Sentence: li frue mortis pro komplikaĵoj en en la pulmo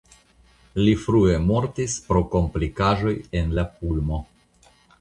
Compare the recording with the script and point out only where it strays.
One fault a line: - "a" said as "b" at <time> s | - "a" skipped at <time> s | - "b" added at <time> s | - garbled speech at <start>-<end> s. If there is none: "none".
- "en" skipped at 3.6 s